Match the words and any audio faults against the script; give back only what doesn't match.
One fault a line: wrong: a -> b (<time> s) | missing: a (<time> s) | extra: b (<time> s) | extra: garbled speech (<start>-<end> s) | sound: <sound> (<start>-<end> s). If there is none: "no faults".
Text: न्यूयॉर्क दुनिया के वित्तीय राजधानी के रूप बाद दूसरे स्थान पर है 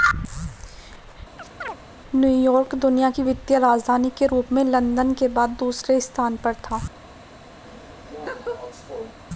sound: chirp (1.4-1.8 s)
wrong: के -> की (3.1 s)
extra: में लंदन के (4.5 s)
wrong: है -> था (6.6 s)
sound: laugh (7.6-9.1 s)